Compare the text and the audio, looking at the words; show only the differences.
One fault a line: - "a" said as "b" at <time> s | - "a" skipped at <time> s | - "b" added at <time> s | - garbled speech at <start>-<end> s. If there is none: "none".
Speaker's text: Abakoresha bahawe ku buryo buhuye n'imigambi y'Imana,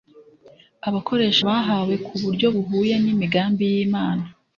none